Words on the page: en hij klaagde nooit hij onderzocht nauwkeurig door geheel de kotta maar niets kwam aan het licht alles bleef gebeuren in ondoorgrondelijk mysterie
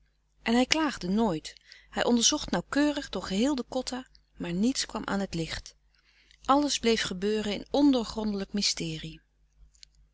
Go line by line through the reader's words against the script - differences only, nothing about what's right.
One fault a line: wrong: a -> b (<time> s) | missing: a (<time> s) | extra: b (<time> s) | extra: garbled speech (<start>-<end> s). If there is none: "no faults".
no faults